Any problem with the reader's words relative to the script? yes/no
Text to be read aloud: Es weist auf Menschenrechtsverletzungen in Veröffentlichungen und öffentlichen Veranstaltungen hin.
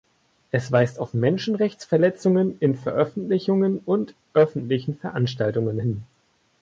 no